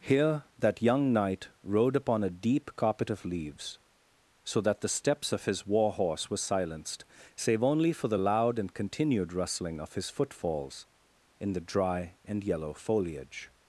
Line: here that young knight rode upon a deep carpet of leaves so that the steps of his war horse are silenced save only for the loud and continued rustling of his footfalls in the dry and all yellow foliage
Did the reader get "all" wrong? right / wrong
wrong